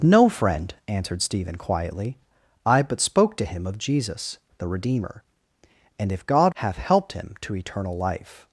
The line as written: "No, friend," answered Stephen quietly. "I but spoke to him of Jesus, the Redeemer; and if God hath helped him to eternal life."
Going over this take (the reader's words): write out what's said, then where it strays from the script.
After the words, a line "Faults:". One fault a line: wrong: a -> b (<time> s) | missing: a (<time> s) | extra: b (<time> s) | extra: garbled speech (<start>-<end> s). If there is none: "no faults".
"No, friend," answered Stephen quietly. "I but spoke to him of Jesus, the Redeemer; and if God hath helped him to eternal life."
Faults:
no faults